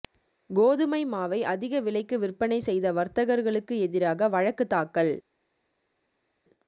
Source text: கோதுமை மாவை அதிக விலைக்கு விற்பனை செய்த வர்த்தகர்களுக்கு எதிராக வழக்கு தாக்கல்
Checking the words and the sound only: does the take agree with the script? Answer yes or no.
yes